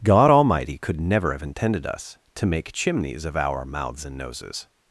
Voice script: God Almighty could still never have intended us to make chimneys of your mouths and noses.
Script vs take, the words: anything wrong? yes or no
yes